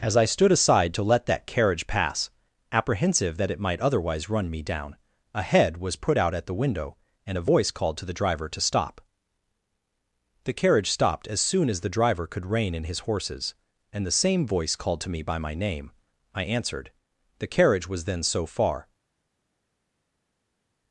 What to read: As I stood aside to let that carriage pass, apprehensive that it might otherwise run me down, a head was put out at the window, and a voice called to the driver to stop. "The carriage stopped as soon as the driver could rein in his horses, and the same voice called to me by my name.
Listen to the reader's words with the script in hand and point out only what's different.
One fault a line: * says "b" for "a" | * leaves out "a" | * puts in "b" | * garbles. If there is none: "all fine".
* puts in "I answered The carriage was then so far"